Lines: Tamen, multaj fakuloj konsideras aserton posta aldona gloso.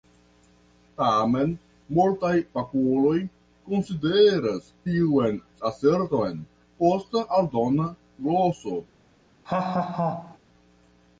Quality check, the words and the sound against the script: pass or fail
fail